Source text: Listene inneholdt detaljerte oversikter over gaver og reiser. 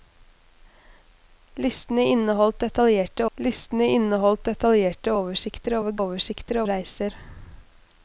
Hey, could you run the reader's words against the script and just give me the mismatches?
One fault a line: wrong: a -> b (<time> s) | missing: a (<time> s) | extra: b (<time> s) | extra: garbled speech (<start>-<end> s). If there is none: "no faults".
extra: listene inneholdt detaljerte (3.4 s)
wrong: gaver -> oversikter (6.0 s)